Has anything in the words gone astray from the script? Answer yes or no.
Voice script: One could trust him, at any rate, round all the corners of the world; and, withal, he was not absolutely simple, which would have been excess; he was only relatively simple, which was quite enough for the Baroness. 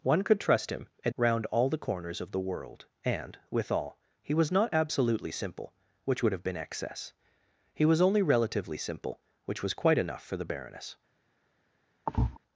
yes